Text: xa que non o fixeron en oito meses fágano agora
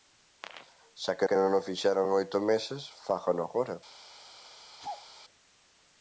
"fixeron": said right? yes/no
yes